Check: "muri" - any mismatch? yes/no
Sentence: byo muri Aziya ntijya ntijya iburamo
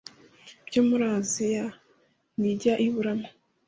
no